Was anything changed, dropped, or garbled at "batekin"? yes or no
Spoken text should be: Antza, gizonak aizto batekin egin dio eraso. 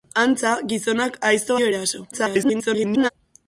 yes